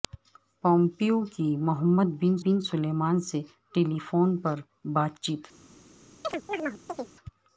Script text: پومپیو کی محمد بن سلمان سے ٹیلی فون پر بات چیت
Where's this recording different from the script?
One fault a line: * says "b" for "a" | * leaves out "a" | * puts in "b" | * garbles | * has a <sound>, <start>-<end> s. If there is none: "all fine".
* puts in "بن"
* has a chirp, 6.2-7.2 s